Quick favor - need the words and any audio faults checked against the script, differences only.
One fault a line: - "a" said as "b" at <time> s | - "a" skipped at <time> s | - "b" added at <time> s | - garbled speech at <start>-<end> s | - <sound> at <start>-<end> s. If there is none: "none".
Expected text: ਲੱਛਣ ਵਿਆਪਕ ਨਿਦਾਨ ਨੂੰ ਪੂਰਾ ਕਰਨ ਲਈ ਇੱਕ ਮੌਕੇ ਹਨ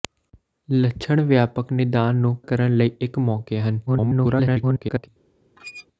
- "ਪੂਰਾ" skipped at 2.4 s
- garbled speech at 3.9-5.1 s
- squeak at 5.6-5.9 s